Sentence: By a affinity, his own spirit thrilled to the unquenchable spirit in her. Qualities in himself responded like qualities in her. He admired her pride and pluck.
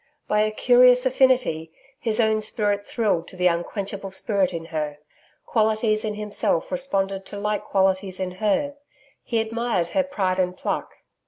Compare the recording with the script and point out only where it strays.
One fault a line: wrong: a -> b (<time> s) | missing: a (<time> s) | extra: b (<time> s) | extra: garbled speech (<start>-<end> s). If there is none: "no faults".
extra: curious (0.5 s)
extra: to (7.3 s)